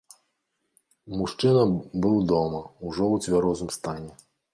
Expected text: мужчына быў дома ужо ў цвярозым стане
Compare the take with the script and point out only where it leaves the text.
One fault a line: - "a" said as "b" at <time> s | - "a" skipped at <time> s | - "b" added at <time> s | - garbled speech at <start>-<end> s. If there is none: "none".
none